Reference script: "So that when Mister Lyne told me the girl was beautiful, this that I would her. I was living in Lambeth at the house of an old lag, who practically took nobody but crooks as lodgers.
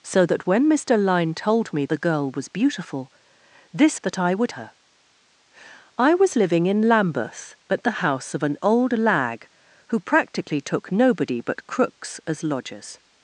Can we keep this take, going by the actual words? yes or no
yes